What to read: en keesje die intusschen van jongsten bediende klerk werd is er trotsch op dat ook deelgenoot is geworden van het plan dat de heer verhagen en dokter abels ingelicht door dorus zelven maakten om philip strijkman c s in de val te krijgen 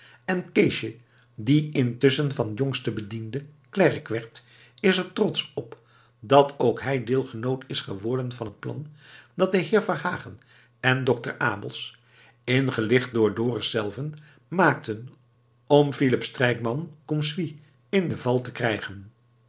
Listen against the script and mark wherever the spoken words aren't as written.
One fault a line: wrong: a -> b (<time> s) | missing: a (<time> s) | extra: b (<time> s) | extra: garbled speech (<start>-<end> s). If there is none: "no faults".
extra: hij (6.8 s)